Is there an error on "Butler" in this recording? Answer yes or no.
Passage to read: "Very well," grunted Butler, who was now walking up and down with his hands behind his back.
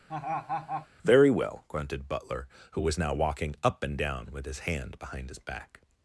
no